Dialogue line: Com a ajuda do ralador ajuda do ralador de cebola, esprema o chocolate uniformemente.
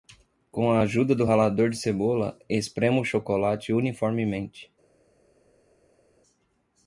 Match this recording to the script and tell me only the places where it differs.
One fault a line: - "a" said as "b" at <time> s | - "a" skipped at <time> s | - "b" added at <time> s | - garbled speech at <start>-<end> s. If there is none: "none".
- "ajuda do ralador" skipped at 1.7 s